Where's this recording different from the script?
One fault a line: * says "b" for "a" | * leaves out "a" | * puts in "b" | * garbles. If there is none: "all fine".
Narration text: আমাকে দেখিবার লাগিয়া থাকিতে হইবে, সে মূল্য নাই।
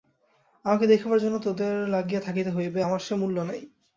* puts in "জন্য তোদের"
* puts in "আমার"